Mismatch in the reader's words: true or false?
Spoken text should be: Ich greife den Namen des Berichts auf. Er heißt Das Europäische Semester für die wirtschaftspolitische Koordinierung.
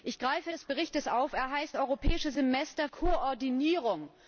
true